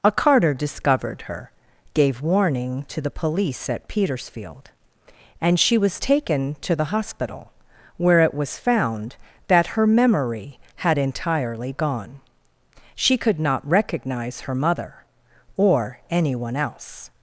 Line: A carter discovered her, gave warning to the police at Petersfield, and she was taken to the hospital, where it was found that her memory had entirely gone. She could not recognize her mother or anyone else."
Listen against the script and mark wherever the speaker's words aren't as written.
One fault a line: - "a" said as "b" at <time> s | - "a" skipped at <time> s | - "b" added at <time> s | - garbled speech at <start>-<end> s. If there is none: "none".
none